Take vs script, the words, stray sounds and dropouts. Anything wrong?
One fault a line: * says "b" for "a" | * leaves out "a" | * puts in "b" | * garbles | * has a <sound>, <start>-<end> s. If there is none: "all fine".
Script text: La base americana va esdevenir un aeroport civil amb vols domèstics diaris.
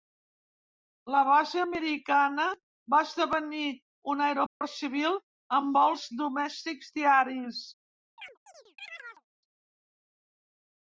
* has a dropout, 4.5-4.6 s
* has a chirp, 8.2-9.2 s